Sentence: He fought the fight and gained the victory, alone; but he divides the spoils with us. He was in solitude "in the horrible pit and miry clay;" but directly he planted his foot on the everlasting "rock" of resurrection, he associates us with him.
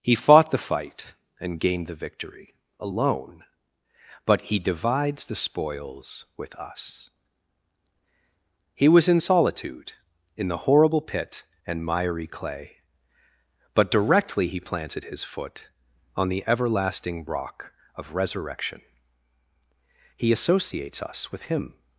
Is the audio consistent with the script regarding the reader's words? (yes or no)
yes